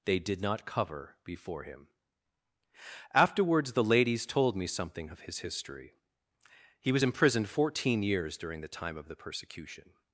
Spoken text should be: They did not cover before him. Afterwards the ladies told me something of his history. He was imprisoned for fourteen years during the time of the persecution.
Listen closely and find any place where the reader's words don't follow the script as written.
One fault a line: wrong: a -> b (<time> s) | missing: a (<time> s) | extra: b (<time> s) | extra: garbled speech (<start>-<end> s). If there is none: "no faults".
missing: for (7.5 s)